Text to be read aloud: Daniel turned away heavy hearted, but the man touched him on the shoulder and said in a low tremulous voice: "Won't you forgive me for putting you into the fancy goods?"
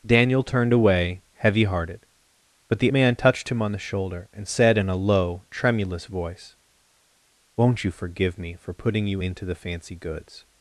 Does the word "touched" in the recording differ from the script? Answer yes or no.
no